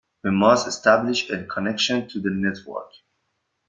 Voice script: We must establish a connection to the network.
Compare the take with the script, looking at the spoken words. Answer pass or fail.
pass